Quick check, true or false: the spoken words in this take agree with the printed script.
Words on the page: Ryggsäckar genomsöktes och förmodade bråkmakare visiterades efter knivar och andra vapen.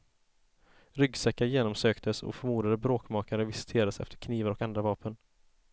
true